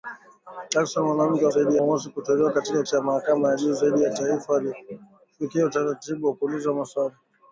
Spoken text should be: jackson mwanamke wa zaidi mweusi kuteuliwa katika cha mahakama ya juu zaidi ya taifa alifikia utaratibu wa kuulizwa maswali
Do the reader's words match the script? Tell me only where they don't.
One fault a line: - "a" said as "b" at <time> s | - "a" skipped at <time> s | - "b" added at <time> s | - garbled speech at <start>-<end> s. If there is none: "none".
none